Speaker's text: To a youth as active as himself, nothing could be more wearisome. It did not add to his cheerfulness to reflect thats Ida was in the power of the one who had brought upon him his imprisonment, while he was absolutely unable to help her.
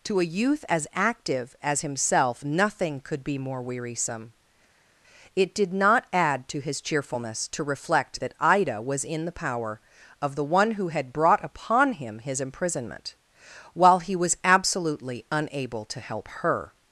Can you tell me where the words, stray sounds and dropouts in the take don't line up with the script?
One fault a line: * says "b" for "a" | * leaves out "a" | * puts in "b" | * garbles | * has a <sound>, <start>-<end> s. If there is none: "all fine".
* says "that" for "thats"